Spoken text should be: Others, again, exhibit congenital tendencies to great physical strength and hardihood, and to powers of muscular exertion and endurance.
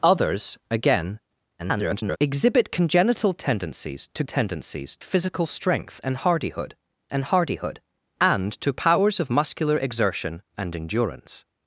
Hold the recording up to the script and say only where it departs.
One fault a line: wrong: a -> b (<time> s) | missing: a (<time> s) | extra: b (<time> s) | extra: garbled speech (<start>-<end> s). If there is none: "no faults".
extra: garbled speech (1.6-2.2 s)
wrong: great -> tendencies (4.2 s)
extra: hardihood and (7.2 s)